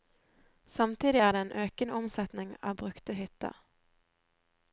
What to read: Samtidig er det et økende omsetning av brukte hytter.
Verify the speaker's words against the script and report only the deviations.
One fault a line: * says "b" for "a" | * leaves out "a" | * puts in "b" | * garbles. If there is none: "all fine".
* says "en" for "et"